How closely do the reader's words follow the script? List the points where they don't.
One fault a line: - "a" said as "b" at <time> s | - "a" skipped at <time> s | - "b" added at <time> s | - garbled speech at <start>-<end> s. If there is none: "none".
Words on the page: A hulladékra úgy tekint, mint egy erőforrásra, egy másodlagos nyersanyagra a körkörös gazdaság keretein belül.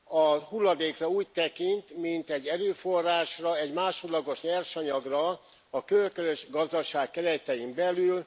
none